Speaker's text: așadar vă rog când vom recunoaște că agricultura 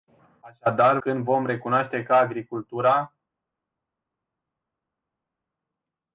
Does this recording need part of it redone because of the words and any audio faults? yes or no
yes